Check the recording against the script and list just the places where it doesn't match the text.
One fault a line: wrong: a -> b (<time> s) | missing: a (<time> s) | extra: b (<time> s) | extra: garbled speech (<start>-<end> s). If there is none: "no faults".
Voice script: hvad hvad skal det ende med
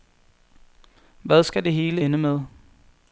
missing: hvad (1.4 s)
extra: hele (1.7 s)